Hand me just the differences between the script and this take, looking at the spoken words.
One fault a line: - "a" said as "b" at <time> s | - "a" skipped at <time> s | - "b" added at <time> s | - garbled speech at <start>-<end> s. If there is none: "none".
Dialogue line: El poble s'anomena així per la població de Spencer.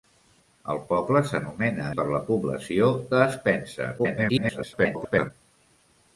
- "així" skipped at 1.9 s
- garbled speech at 4.0-5.3 s